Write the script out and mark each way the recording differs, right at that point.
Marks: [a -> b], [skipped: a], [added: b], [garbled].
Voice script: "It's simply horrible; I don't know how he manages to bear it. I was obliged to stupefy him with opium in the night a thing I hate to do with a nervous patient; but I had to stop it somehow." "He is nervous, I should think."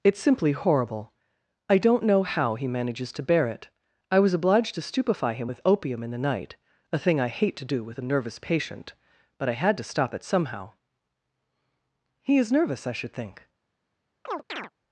"It's simply horrible; I don't know how he manages to bear it. I was obliged to stupefy him with opium in the night a thing I hate to do with a nervous patient; but I had to stop it somehow." "He is nervous, I should think."